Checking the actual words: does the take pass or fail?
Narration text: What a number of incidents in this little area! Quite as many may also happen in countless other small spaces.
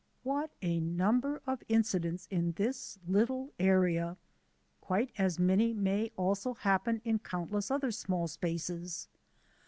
pass